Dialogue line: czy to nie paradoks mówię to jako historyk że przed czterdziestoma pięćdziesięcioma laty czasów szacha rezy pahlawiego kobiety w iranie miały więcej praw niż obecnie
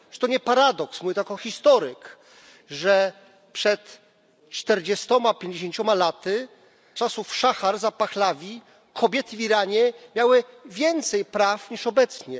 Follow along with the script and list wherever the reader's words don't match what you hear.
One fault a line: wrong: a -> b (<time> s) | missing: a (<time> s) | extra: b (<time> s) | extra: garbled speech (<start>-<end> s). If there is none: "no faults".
no faults